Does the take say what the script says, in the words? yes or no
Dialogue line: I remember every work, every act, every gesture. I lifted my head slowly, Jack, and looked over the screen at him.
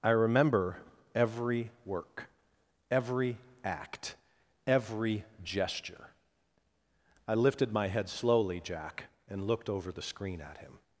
yes